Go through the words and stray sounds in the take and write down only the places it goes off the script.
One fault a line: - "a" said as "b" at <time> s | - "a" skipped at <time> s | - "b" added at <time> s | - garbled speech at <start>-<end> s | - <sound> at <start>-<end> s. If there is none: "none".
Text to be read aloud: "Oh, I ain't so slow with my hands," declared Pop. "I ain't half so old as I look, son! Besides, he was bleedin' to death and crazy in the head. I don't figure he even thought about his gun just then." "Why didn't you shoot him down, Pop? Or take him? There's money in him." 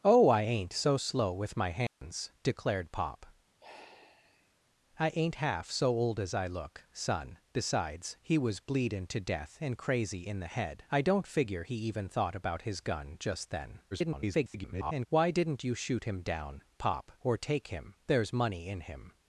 - dropout at 1.9-2.0 s
- sigh at 3.6-4.6 s
- garbled speech at 13.9-15.1 s